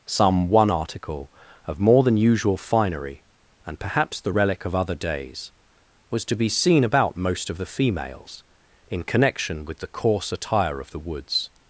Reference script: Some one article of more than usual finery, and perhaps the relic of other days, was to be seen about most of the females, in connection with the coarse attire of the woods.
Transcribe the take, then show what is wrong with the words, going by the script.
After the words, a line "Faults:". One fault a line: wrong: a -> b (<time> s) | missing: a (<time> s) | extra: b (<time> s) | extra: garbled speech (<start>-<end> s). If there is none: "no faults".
Some one article of more than usual finery, and perhaps the relic of other days, was to be seen about most of the females, in connection with the coarse attire of the woods.
Faults:
no faults